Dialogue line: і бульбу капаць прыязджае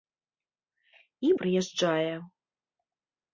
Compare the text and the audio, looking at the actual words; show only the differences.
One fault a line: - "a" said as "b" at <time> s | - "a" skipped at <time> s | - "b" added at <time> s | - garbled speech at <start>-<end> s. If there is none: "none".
- "бульбу капаць" skipped at 1.4 s